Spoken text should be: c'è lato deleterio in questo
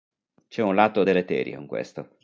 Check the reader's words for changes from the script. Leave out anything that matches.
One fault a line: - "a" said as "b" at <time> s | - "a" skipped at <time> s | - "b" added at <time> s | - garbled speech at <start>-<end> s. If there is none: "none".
- "un" added at 0.6 s